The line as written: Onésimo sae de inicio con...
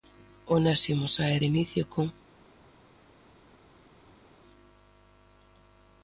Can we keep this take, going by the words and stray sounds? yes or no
yes